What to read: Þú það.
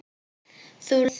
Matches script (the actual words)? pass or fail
pass